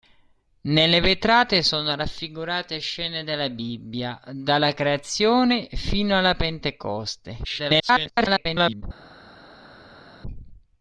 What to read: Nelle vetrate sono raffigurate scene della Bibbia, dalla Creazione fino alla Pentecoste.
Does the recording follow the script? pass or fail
fail